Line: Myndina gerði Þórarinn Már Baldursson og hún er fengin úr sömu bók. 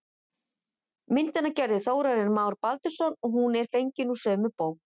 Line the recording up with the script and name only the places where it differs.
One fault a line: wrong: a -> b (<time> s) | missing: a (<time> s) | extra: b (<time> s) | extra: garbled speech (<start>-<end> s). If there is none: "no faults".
no faults